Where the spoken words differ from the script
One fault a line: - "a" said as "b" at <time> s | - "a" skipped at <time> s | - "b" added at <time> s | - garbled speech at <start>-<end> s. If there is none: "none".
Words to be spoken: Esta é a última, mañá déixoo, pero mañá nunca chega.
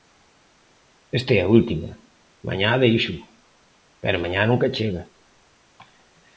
none